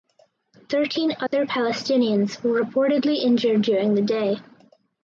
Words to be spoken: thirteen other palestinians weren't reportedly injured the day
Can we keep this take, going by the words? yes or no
no